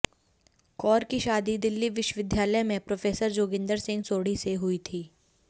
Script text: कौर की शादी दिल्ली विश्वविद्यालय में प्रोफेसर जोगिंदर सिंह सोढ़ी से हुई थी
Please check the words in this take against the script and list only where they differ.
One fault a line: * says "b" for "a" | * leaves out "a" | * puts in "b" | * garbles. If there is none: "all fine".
all fine